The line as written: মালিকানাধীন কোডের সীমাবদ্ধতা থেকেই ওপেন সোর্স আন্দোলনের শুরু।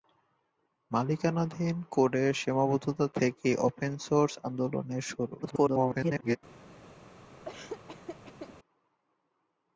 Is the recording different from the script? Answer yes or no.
yes